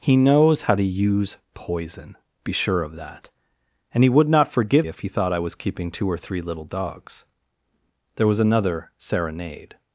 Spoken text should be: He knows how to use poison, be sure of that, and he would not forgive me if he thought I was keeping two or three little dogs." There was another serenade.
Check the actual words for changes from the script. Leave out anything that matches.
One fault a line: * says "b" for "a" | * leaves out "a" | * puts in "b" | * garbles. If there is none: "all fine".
* leaves out "me"